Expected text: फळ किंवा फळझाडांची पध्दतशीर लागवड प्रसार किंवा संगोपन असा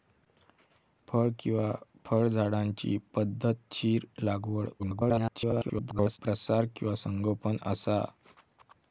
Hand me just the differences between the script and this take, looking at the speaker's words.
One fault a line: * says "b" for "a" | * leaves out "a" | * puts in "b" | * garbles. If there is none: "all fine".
* garbles